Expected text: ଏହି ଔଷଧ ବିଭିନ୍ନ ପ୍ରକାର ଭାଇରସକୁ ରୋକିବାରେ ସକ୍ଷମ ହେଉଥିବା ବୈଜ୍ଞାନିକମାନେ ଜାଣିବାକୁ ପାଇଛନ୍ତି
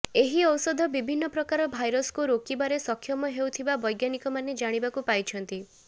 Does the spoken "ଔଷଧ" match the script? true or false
true